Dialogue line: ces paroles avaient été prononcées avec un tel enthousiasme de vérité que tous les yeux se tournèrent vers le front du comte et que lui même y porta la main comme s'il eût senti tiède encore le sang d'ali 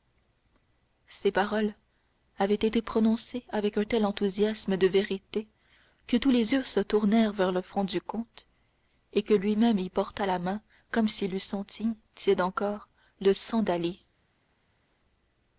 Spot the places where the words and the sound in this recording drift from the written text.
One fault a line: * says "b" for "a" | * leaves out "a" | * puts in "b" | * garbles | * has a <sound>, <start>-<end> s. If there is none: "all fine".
all fine